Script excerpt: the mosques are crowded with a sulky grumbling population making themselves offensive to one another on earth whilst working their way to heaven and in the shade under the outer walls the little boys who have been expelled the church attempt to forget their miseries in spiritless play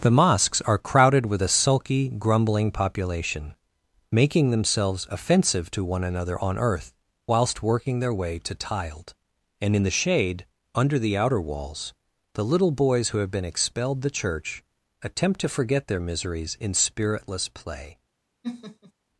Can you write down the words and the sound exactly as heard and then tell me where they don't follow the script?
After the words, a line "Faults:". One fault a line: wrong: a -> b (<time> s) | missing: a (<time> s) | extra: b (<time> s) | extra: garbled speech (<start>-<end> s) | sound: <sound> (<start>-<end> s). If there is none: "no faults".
the mosques are crowded with a sulky grumbling population making themselves offensive to one another on earth whilst working their way to tiled and in the shade under the outer walls the little boys who have been expelled the church attempt to forget their miseries in spiritless play
Faults:
wrong: heaven -> tiled (8.6 s)
sound: laugh (18.4-18.9 s)